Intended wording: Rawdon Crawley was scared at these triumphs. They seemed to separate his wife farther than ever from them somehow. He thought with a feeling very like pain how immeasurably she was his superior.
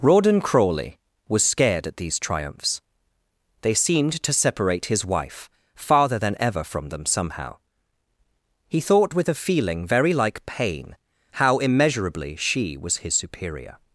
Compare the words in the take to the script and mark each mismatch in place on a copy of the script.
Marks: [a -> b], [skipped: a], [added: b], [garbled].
Rawdon Crawley was scared at these triumphs. They seemed to separate his wife farther than ever from them somehow. He thought with a feeling very like pain how immeasurably she was his superior.